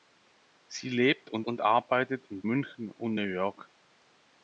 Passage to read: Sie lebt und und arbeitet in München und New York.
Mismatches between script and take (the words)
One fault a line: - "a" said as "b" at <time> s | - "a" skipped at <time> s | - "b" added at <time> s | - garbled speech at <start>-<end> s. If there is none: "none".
none